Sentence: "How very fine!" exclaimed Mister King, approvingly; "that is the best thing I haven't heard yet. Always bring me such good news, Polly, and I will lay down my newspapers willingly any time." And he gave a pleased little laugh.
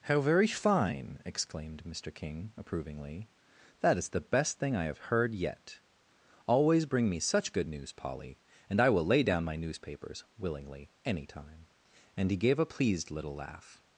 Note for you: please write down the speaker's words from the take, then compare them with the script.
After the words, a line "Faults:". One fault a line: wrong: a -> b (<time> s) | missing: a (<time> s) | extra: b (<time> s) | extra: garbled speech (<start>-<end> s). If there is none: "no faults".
"How very fine!" exclaimed Mister King, approvingly; "that is the best thing I have heard yet. Always bring me such good news, Polly, and I will lay down my newspapers willingly any time." And he gave a pleased little laugh.
Faults:
wrong: haven't -> have (4.8 s)